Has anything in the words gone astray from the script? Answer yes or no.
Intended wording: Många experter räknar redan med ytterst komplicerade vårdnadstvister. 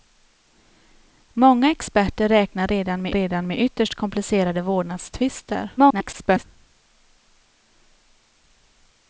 yes